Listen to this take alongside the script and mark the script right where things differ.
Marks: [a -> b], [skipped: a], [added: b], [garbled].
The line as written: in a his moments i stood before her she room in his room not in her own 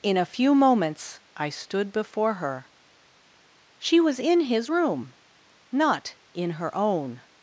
in a [his -> few] moments i stood before her she [room -> was] in his room not in her own